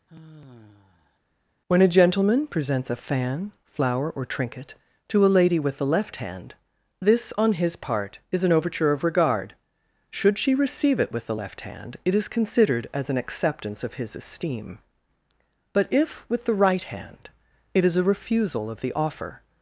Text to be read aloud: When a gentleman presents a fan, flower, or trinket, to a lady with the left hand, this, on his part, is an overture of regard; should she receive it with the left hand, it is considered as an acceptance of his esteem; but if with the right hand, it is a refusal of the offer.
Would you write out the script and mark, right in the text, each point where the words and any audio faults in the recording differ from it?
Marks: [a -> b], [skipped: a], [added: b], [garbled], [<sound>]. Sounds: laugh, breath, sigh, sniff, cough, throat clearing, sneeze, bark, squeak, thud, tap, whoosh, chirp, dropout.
[sigh] When a gentleman presents a fan, flower, or trinket, to a lady with the left hand, this, on his part, is an overture of regard; should she receive it with the left hand, it is considered as an acceptance of his esteem; but if with the right hand, it is a refusal of the offer.